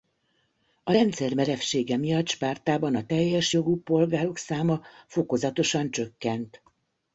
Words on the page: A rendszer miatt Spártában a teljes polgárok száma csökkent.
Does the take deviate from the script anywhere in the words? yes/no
yes